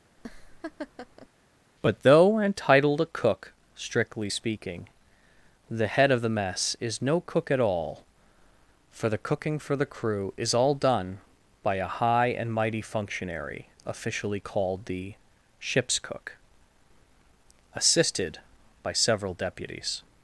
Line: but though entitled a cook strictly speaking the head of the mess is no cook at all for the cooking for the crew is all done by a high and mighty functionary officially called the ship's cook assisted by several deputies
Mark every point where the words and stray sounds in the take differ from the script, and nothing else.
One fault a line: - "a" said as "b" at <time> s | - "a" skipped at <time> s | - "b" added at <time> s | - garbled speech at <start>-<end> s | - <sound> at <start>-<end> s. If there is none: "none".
- laugh at 0.2-1.3 s